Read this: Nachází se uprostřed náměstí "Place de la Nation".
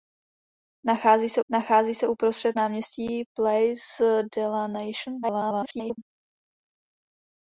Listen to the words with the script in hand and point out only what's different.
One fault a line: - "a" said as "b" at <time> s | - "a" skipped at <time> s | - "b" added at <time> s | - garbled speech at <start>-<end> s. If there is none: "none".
- "nachází se" added at 1.5 s
- garbled speech at 5.2-6.0 s